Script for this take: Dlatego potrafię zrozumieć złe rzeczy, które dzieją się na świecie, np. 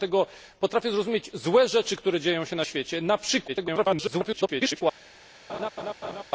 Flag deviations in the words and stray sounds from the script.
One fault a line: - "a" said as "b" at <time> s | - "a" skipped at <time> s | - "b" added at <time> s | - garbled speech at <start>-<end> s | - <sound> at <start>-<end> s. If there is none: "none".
- garbled speech at 3.5-4.8 s
- laugh at 5.5-6.2 s